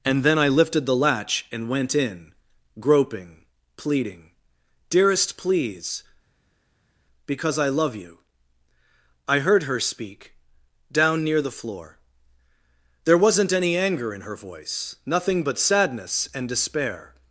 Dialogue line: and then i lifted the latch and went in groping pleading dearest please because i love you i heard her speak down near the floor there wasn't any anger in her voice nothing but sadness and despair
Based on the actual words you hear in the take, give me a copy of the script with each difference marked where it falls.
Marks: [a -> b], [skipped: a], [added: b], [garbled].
and then i lifted the latch and went in groping pleading dearest please because i love you i heard her speak down near the floor there wasn't any anger in her voice nothing but sadness and despair